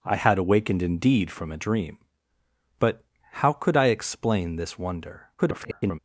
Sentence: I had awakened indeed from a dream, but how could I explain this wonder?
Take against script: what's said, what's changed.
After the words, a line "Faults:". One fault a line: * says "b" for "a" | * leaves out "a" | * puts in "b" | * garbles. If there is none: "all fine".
I had awakened indeed from a dream, but how could I explain this wonder? [garbled]
Faults:
* garbles